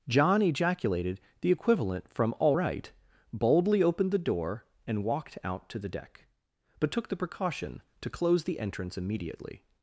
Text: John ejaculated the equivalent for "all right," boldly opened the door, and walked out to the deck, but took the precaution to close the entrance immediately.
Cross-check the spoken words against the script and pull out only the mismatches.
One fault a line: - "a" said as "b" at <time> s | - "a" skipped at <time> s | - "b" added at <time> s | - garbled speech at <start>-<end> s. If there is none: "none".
- "for" said as "from" at 2.1 s